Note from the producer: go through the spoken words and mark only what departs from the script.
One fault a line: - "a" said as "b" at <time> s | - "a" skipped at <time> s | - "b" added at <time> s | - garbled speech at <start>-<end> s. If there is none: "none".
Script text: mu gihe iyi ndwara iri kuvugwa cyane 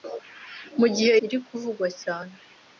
- "iyi ndwara" skipped at 1.1 s